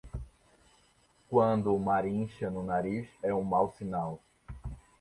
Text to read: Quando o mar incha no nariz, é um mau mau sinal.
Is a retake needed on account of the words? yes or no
yes